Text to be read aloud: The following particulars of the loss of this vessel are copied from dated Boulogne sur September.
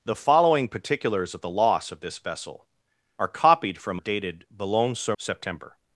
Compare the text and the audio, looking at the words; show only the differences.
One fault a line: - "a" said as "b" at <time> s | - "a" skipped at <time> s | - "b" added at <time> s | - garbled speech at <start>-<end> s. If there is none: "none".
none